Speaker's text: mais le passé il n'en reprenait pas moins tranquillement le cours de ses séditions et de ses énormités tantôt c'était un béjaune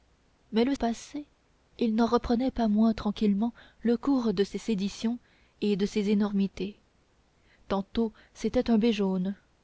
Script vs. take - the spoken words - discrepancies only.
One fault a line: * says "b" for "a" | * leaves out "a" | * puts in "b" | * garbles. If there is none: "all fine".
all fine